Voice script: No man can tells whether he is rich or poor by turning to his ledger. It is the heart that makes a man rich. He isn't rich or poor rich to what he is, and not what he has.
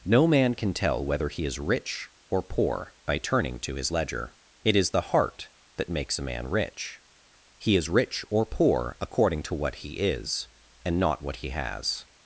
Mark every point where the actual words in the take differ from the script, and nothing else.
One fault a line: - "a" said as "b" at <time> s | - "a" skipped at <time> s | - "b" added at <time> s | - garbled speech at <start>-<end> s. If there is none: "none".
- "tells" said as "tell" at 0.7 s
- "isn't" said as "is" at 7.8 s
- "rich" said as "according" at 9.0 s